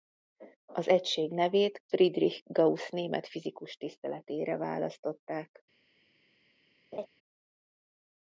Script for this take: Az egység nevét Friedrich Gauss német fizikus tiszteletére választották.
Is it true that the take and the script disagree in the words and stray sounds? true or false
true